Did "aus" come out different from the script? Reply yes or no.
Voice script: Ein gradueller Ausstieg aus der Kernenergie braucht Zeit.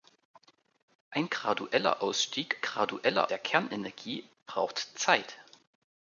yes